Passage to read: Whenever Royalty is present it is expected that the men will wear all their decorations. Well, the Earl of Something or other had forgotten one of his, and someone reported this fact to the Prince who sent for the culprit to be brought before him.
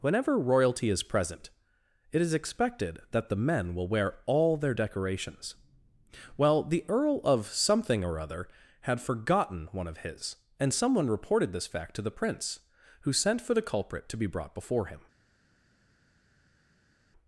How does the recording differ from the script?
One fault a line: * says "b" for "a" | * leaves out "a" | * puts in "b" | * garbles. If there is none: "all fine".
all fine